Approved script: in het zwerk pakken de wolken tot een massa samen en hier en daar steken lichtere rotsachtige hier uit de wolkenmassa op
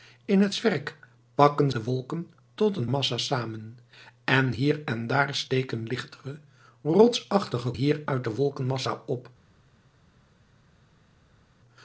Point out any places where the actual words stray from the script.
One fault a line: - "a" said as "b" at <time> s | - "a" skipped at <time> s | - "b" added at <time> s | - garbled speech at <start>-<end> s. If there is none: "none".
none